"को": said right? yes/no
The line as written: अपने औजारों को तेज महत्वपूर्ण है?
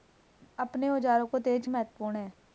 yes